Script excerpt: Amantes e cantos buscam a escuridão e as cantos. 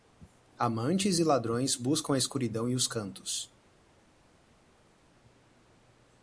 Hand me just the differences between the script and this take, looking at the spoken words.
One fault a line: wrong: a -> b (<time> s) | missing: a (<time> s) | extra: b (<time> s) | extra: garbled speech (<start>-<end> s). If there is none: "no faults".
wrong: cantos -> ladrões (1.3 s)
wrong: as -> os (2.8 s)